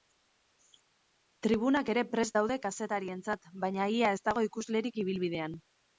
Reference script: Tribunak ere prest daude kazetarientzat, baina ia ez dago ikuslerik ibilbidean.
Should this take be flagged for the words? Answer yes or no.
no